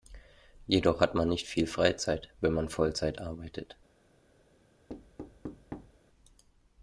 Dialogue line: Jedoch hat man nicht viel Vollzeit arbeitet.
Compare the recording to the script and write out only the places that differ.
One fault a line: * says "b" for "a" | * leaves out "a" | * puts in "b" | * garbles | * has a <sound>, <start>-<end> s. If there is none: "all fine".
* puts in "Freizeit wenn man"
* has a thud, 4.9-6.0 s